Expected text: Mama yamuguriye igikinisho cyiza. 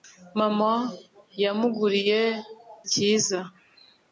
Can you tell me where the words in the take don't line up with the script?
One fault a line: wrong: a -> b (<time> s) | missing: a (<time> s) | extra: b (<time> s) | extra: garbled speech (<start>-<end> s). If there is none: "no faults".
missing: igikinisho (2.2 s)